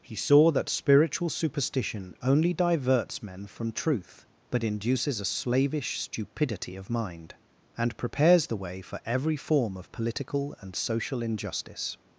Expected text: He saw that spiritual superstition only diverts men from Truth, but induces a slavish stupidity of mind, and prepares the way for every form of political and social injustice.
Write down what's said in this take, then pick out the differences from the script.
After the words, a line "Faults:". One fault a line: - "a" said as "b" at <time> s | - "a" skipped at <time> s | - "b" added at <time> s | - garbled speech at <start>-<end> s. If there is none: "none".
He saw that spiritual superstition only diverts men from Truth, but induces a slavish stupidity of mind, and prepares the way for every form of political and social injustice.
Faults:
none